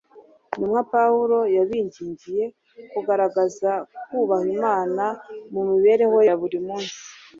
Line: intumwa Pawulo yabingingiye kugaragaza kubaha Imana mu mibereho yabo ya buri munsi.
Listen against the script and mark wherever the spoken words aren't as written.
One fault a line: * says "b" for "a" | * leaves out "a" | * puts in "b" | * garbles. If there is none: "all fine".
* leaves out "yabo"